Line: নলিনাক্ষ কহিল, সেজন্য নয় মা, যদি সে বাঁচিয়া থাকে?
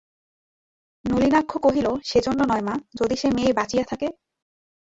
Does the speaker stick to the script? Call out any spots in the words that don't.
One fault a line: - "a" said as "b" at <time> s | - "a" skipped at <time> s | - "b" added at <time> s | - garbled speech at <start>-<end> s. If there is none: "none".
- "মেয়ে" added at 3.4 s